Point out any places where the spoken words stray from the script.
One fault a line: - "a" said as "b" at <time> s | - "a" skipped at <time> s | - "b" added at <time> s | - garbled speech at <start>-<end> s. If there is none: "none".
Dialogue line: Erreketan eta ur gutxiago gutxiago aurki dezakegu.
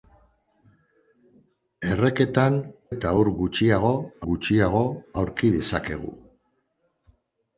none